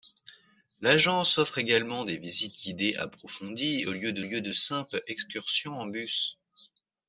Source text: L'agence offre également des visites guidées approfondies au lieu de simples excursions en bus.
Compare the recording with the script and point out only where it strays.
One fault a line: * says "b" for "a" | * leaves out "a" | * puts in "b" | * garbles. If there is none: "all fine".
* puts in "lieu de"